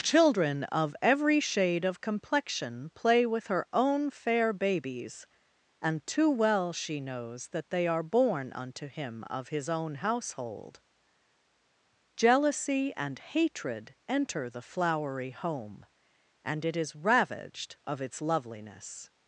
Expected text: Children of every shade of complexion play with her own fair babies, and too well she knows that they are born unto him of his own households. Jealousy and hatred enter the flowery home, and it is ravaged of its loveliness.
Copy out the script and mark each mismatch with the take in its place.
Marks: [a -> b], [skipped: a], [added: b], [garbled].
Children of every shade of complexion play with her own fair babies, and too well she knows that they are born unto him of his own [households. -> household] Jealousy and hatred enter the flowery home, and it is ravaged of its loveliness.